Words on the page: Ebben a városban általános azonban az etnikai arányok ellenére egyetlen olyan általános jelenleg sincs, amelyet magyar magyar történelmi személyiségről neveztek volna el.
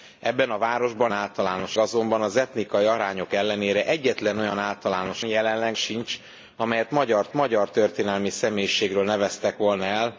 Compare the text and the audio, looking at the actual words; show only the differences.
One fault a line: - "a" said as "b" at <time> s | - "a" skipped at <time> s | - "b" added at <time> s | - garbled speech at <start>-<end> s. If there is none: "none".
none